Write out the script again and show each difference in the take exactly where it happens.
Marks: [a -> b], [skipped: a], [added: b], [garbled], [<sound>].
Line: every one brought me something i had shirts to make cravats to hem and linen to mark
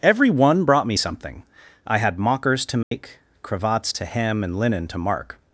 every one brought me something i had [shirts -> mockers] to make [dropout] cravats to hem and linen to mark